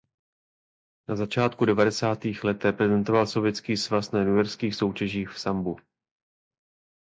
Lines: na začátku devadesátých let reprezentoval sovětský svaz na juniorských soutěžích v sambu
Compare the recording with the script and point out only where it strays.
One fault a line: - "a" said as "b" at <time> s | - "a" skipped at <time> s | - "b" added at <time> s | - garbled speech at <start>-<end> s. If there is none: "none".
none